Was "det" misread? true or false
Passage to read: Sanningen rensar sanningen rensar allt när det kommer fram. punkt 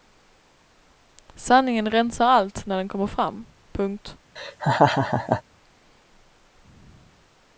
true